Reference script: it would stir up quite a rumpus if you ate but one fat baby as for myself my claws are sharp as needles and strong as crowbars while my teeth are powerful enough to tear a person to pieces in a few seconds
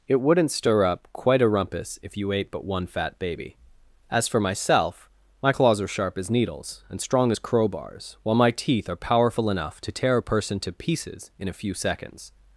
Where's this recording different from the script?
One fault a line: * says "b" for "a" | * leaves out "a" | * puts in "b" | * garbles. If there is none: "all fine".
* says "wouldn't" for "would"